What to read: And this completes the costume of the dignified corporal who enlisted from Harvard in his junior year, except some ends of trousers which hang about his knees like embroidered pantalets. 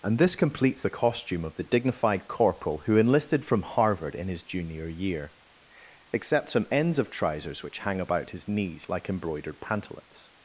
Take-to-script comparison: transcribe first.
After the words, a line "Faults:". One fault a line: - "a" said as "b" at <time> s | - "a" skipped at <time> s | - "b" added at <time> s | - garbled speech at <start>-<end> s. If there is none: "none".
And this completes the costume of the dignified corporal who enlisted from Harvard in his junior year, except some ends of trousers which hang about his knees like embroidered pantalets.
Faults:
none